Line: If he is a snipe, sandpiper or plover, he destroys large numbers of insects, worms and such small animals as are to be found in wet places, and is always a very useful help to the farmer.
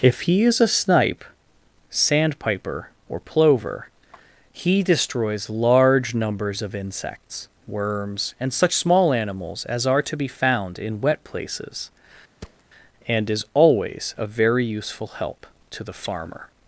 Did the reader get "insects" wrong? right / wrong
right